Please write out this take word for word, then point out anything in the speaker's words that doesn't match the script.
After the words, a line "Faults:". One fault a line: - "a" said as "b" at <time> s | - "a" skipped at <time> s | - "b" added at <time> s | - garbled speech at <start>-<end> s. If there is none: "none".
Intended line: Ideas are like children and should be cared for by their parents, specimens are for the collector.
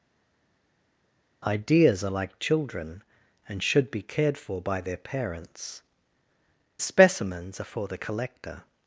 Ideas are like children and should be cared for by their parents, specimens are for the collector.
Faults:
none